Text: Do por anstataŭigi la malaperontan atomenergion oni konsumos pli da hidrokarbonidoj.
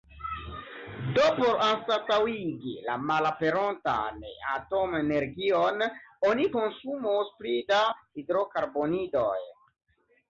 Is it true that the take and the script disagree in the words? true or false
false